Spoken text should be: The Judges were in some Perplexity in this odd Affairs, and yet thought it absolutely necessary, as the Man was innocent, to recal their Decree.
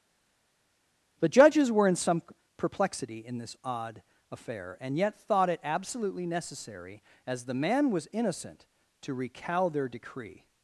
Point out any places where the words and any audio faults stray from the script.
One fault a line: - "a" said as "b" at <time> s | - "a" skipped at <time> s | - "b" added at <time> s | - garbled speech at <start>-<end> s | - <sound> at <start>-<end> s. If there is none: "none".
- "Affairs" said as "Affair" at 4.3 s